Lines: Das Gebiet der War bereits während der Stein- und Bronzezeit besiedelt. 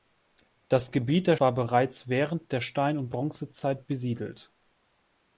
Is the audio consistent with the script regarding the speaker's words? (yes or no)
yes